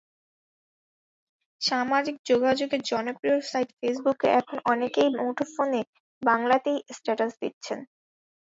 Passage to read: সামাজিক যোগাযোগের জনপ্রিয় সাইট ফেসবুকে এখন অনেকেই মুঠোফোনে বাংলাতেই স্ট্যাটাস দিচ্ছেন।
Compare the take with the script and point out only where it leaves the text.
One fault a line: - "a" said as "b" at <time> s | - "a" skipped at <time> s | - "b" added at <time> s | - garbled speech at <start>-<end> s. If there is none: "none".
none